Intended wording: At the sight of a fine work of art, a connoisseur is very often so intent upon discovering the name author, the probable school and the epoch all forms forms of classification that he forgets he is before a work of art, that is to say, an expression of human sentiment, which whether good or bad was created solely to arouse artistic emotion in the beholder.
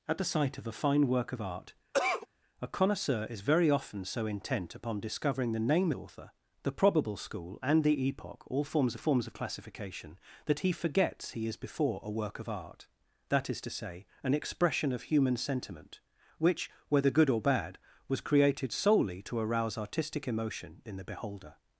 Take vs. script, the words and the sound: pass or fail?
fail